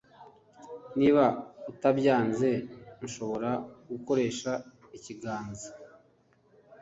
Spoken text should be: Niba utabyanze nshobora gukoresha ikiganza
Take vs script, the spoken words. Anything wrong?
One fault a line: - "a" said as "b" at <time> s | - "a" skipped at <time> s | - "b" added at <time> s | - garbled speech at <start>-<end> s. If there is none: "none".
none